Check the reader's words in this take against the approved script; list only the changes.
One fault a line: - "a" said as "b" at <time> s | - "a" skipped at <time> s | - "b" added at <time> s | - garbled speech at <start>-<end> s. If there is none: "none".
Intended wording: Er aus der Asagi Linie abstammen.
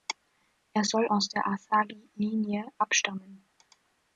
- "soll" added at 0.8 s